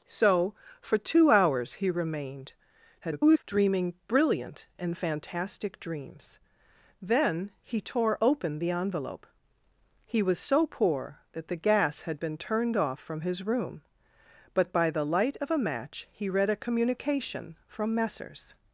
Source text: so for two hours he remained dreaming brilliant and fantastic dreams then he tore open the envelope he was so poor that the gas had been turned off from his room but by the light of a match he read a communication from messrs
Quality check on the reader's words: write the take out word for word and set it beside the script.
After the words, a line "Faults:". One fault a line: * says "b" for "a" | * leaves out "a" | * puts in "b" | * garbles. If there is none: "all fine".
so for two hours he remained [garbled] dreaming brilliant and fantastic dreams then he tore open the envelope he was so poor that the gas had been turned off from his room but by the light of a match he read a communication from messrs
Faults:
* garbles